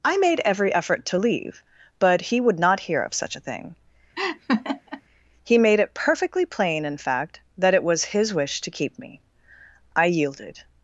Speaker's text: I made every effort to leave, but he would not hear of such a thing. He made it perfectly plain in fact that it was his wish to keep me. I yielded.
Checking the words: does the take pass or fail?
pass